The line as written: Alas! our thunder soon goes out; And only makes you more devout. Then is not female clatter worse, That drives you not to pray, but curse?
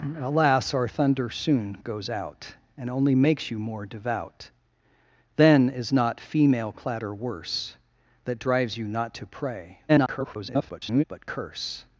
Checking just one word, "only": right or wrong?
right